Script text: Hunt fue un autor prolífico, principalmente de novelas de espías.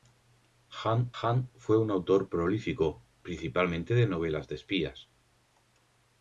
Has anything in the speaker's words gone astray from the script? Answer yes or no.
yes